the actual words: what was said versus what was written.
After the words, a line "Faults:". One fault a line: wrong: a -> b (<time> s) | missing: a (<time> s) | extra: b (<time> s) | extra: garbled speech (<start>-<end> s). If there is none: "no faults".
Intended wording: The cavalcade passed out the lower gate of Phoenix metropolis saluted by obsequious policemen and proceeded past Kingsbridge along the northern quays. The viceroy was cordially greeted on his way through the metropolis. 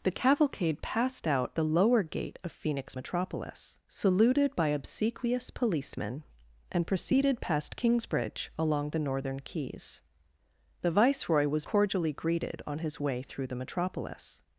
The cavalcade passed out the lower gate of Phoenix metropolis saluted by obsequious policemen and proceeded past Kingsbridge along the northern quays. The viceroy was cordially greeted on his way through the metropolis.
Faults:
no faults